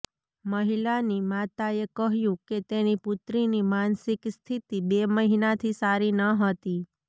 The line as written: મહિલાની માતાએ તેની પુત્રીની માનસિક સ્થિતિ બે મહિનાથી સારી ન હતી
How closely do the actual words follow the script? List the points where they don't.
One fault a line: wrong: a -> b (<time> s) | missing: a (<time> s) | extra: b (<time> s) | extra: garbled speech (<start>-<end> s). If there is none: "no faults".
extra: કહ્યું કે (1.9 s)